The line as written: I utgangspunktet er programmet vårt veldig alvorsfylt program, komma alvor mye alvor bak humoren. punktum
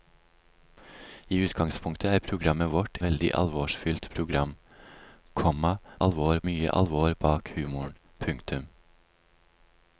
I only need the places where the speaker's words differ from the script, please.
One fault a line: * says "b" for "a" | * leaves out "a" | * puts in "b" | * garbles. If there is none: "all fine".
all fine